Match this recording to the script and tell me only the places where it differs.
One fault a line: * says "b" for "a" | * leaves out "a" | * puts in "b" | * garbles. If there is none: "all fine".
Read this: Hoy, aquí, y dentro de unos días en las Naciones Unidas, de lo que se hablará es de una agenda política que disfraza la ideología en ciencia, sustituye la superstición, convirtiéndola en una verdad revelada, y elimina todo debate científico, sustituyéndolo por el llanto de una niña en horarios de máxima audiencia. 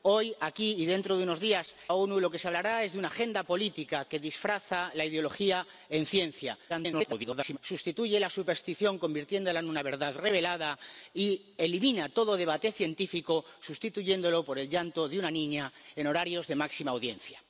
* leaves out "en las"
* garbles